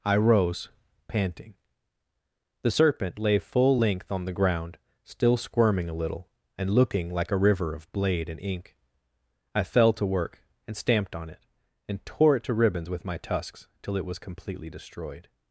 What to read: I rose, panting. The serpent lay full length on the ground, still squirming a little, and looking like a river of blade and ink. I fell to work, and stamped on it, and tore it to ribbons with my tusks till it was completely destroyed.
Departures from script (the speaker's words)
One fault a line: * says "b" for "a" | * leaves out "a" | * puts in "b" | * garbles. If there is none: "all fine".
all fine